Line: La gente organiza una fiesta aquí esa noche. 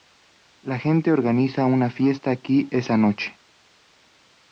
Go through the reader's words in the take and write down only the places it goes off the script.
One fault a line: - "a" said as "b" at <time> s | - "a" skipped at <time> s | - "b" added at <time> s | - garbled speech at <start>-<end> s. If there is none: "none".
none